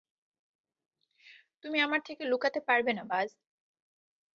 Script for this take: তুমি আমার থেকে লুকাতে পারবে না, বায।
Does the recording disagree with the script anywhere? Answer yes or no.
no